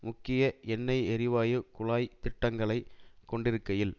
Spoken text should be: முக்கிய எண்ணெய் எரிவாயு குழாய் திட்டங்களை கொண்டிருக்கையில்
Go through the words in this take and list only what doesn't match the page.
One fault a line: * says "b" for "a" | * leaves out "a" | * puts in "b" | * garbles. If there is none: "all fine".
all fine